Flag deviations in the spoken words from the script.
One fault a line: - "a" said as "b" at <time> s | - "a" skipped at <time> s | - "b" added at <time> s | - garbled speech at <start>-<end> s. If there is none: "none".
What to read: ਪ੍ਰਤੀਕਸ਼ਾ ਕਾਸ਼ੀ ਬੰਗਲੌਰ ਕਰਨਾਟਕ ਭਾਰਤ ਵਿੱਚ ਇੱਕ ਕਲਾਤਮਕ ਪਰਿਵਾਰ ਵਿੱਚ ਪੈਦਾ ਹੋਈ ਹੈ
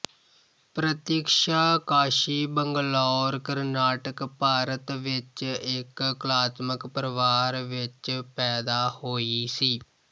- "ਹੈ" said as "ਸੀ" at 9.5 s